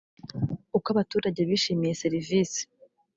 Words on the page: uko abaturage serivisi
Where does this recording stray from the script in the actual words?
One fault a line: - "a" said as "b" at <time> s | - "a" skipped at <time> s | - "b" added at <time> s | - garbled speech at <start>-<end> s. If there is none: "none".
- "bishimiye" added at 1.5 s